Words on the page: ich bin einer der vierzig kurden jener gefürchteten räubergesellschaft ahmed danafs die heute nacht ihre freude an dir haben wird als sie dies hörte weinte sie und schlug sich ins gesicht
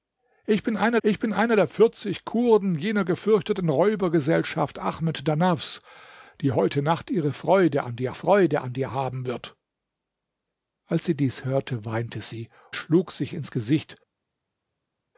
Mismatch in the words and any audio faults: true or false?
true